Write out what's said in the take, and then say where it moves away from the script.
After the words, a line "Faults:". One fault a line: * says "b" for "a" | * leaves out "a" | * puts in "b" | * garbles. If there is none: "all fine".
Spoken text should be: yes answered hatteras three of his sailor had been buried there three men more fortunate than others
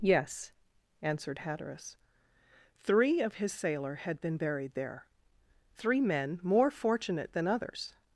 yes answered hatteras three of his sailor had been buried there three men more fortunate than others
Faults:
all fine